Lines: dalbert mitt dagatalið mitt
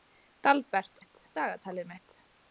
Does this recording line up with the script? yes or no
yes